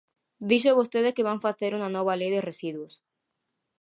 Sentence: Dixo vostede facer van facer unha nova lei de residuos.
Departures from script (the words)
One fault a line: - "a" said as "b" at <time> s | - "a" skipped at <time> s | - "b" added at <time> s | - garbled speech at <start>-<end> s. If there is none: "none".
- "facer" said as "que" at 1.1 s